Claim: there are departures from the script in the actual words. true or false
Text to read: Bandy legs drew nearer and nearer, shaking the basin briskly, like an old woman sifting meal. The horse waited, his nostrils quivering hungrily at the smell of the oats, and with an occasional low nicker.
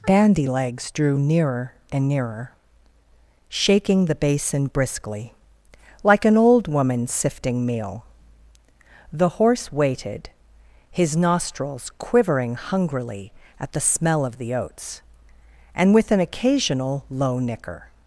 false